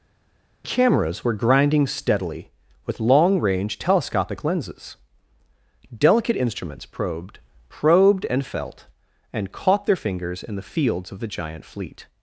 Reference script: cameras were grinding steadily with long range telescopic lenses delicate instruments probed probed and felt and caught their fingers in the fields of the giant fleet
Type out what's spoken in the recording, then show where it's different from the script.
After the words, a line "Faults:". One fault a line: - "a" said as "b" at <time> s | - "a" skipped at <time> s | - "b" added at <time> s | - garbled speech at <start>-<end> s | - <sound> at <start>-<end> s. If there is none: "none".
cameras were grinding steadily with long range telescopic lenses delicate instruments probed probed and felt and caught their fingers in the fields of the giant fleet
Faults:
none